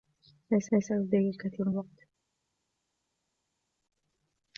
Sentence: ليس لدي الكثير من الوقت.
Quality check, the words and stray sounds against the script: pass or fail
fail